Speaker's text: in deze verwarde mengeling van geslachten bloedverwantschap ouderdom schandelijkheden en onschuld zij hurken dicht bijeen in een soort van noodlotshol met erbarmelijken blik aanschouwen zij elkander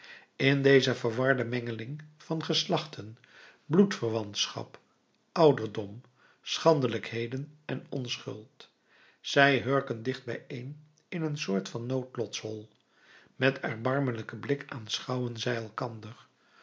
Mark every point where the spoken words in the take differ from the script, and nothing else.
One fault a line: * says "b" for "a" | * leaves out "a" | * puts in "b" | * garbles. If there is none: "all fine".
all fine